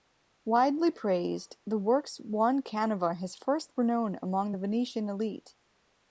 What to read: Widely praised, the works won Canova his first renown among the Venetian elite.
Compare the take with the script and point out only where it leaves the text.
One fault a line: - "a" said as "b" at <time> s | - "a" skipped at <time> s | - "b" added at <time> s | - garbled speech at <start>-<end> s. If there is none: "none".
none